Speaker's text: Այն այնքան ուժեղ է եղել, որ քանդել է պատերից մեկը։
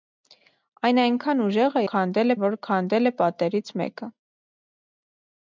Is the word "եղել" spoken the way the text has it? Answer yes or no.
no